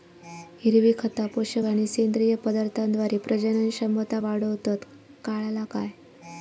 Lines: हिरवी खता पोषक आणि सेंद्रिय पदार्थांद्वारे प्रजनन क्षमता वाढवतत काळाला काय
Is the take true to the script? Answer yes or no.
yes